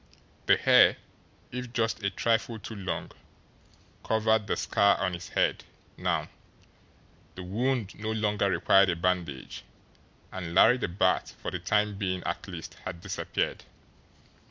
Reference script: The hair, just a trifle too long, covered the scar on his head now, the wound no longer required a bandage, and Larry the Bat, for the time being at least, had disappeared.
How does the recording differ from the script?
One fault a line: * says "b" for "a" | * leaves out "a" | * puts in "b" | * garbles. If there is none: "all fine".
* puts in "if"